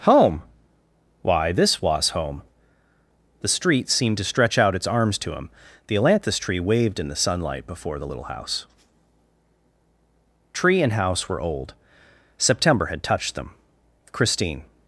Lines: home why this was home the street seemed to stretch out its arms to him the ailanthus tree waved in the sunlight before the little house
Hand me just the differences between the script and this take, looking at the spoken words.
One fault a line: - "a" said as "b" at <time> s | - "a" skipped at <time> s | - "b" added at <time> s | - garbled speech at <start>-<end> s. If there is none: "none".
- "tree and house were old september had touched them christine" added at 10.5 s